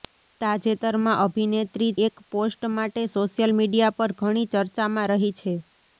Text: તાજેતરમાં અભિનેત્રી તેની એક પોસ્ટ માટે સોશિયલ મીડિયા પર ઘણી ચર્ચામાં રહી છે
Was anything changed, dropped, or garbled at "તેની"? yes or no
yes